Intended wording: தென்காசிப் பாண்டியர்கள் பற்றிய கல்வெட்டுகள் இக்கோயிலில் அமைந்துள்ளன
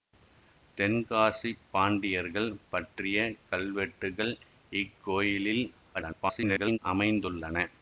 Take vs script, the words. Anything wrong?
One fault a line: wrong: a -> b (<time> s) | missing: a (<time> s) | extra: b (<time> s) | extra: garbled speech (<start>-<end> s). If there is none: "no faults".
extra: garbled speech (5.9-6.8 s)